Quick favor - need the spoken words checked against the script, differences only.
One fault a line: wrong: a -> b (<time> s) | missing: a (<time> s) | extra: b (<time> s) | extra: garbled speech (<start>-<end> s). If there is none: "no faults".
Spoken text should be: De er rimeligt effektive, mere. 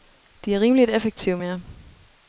no faults